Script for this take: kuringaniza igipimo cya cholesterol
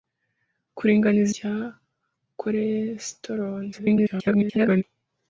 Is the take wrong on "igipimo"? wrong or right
wrong